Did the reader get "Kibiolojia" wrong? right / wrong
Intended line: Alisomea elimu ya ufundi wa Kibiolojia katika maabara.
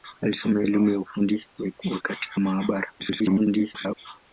wrong